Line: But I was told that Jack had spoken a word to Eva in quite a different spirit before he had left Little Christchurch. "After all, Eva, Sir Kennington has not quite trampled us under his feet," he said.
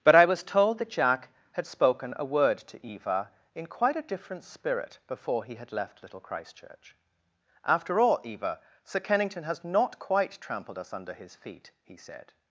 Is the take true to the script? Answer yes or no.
yes